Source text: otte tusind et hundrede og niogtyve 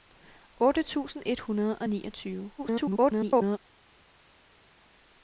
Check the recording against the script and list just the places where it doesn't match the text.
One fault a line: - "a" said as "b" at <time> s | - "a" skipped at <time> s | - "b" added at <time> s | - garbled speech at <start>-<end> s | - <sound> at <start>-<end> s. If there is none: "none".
- garbled speech at 2.6-3.6 s